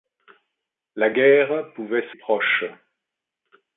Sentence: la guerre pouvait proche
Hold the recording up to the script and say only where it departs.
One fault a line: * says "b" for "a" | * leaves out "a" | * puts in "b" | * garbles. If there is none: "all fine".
all fine